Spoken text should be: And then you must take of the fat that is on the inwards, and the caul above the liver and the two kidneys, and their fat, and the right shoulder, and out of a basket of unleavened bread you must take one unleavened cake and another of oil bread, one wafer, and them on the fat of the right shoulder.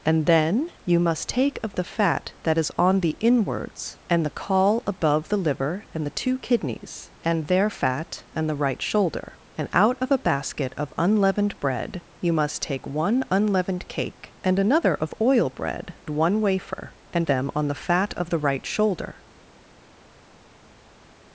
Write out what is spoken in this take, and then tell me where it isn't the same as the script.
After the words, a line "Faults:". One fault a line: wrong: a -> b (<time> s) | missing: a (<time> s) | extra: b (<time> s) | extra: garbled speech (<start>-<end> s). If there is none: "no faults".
And then you must take of the fat that is on the inwards, and the caul above the liver and the two kidneys, and their fat, and the right shoulder, and out of a basket of unleavened bread you must take one unleavened cake and another of oil bread, one wafer, and them on the fat of the right shoulder.
Faults:
no faults